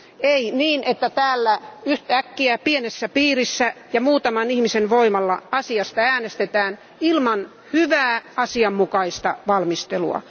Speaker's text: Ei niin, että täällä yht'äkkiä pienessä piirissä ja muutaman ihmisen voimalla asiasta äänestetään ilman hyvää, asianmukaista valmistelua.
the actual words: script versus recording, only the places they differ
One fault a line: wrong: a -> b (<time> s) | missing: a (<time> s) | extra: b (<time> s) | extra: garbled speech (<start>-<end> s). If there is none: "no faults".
no faults